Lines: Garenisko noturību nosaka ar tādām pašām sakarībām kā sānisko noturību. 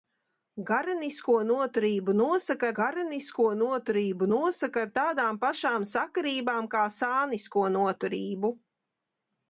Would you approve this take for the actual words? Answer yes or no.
no